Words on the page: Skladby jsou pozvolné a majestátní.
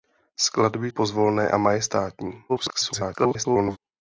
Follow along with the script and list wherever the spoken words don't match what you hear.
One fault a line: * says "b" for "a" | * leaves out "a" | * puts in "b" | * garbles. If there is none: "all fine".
* leaves out "jsou"
* garbles